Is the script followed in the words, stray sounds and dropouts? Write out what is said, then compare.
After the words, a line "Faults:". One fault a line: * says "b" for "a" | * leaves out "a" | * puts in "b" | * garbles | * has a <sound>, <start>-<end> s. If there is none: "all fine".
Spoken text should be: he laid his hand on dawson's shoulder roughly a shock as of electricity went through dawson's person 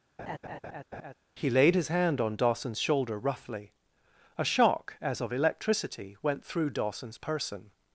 he laid his hand on dawson's shoulder roughly a shock as of electricity went through dawson's person
Faults:
* has a laugh, 0.2-1.1 s